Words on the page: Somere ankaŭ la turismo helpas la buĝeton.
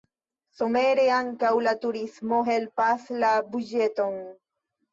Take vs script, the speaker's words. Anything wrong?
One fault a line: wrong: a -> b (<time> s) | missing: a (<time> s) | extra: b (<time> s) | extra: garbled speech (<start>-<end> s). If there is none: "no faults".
no faults